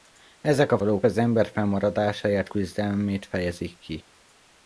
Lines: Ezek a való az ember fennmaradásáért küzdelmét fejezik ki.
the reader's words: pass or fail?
pass